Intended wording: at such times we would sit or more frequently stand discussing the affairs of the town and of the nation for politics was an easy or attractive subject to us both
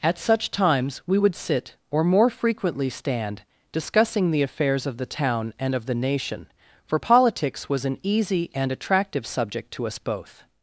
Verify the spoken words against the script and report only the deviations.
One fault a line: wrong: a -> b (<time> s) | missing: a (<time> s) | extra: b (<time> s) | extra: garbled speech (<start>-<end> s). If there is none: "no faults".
wrong: or -> and (8.5 s)